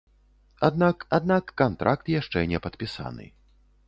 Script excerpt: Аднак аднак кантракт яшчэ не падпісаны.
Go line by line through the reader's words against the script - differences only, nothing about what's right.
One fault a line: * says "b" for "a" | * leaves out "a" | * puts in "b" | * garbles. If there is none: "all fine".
all fine